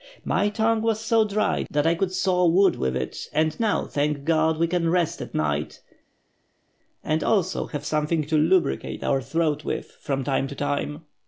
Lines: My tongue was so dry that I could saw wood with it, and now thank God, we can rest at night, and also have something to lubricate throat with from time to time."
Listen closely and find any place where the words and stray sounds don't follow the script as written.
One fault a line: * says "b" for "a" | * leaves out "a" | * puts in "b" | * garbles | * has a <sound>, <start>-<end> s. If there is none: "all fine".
* puts in "our"